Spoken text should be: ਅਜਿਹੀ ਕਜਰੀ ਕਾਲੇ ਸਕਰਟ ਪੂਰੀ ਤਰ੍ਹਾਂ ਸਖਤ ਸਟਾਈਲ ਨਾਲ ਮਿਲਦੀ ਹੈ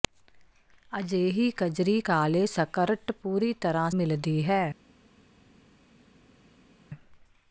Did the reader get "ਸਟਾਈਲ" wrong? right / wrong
wrong